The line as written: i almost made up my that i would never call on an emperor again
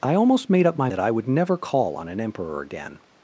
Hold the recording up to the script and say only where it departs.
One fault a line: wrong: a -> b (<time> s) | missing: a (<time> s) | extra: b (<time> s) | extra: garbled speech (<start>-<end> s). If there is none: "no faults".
no faults